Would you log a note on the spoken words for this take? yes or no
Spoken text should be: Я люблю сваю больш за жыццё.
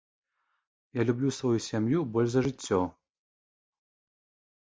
yes